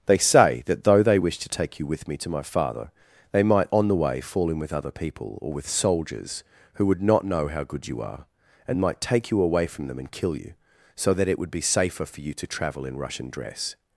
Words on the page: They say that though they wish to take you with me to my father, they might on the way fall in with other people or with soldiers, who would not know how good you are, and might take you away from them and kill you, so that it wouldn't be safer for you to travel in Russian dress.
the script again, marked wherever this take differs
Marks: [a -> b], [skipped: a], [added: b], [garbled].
They say that though they wish to take you with me to my father, they might on the way fall in with other people or with soldiers, who would not know how good you are, and might take you away from them and kill you, so that it [wouldn't -> would] be safer for you to travel in Russian dress.